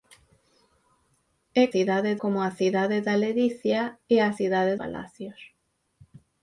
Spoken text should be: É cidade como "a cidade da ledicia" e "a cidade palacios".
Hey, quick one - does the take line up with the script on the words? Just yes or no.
yes